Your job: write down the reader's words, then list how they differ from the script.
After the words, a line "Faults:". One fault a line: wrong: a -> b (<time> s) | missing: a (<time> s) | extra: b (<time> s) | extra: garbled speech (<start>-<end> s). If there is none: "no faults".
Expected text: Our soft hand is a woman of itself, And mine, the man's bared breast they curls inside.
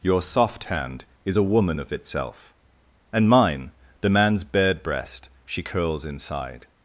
Your soft hand is a woman of itself, And mine, the man's bared breast she curls inside.
Faults:
wrong: Our -> Your (0.0 s)
wrong: they -> she (5.4 s)